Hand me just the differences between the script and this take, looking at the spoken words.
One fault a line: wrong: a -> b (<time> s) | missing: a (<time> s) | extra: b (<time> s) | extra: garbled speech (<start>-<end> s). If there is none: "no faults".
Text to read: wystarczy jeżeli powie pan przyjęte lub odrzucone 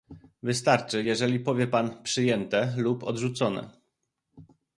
no faults